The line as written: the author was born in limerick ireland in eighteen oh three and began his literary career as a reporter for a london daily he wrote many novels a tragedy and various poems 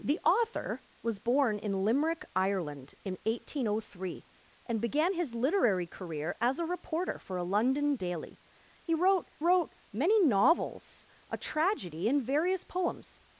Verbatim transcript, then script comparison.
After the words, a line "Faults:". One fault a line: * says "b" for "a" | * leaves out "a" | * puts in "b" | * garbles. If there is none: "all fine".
the author was born in limerick ireland in eighteen oh three and began his literary career as a reporter for a london daily he wrote wrote many novels a tragedy and various poems
Faults:
* puts in "wrote"